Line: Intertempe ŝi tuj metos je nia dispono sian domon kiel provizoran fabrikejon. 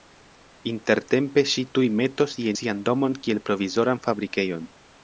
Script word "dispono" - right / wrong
wrong